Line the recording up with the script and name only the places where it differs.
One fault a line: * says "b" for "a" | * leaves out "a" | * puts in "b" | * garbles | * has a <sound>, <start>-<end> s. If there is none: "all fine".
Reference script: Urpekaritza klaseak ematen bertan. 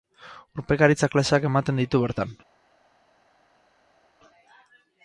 * puts in "ditu"